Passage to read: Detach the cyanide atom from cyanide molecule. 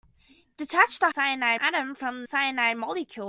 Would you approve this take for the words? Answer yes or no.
yes